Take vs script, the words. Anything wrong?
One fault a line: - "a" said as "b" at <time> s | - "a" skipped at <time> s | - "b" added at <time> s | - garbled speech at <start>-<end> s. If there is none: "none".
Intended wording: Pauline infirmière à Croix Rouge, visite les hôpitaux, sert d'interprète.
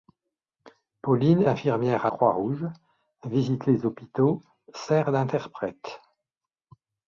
none